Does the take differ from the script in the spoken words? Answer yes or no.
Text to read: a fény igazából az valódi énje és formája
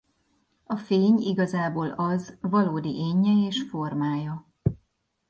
no